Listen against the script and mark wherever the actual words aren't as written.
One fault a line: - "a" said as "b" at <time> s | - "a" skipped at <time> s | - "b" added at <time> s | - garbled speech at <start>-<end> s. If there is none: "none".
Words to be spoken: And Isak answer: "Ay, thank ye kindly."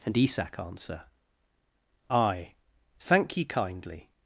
none